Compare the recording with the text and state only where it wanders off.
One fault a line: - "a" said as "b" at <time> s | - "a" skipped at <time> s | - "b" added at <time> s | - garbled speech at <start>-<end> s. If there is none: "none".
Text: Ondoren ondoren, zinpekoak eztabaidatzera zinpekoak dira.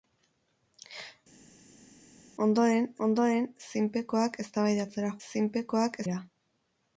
none